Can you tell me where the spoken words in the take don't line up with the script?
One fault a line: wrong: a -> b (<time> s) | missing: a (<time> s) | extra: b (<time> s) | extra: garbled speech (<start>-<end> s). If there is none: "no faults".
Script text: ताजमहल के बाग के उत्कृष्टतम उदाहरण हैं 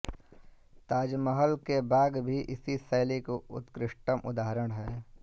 extra: भी इसी शैली (2.2 s)